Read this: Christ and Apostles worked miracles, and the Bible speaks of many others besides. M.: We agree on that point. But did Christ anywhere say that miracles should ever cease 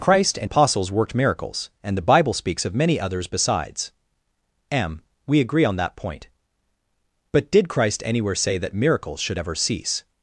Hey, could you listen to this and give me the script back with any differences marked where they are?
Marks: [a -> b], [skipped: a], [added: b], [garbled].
Christ and Apostles worked miracles, and the Bible speaks of many others besides. M.: We agree on that point. But did Christ anywhere say that miracles should ever cease